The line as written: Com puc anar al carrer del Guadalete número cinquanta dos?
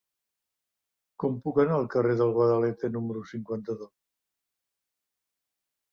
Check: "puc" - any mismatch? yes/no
no